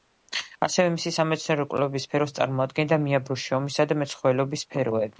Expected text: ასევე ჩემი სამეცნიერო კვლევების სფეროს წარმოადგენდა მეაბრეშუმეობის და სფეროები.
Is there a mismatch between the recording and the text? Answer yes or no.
yes